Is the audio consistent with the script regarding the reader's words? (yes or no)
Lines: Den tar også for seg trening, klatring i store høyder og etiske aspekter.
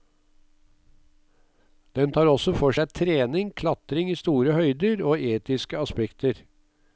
yes